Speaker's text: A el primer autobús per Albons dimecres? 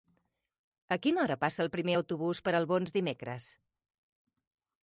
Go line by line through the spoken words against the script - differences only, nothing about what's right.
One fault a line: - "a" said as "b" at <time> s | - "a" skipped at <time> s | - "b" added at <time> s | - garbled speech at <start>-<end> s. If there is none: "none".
- "quina hora passa" added at 1.0 s